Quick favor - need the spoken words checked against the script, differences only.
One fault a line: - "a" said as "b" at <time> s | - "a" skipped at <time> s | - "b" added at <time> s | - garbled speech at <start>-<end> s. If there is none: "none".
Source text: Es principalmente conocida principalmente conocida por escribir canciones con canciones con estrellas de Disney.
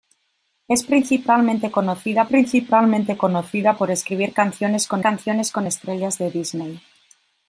none